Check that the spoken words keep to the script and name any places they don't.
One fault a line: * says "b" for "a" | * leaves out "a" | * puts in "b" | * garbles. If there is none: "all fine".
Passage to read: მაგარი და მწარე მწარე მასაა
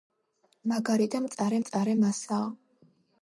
all fine